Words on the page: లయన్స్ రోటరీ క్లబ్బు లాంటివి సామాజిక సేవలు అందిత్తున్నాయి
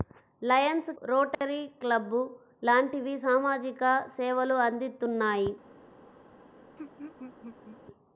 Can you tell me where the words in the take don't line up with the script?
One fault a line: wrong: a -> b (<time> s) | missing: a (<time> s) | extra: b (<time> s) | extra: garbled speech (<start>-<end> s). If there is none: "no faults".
no faults